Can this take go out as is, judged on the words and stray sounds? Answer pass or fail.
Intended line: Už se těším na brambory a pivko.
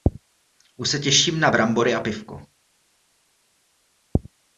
pass